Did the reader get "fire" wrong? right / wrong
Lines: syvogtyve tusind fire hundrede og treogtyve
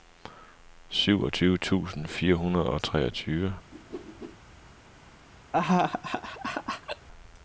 right